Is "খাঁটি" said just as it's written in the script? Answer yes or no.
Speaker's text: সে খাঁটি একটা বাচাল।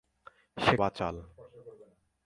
no